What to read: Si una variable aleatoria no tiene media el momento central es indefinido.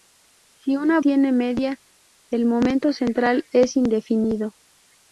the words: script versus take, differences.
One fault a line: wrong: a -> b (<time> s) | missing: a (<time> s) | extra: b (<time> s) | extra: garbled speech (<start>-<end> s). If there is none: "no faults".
missing: variable aleatoria no (1.0 s)